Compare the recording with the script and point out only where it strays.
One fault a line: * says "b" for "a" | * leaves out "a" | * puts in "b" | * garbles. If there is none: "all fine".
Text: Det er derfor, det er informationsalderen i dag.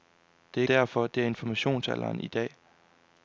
all fine